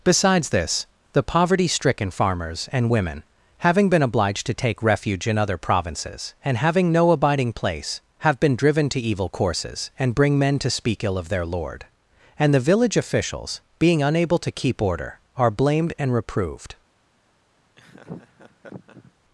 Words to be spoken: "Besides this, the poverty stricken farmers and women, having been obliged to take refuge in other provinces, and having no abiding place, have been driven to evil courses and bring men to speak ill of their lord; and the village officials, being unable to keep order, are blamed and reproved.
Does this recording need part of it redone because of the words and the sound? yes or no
yes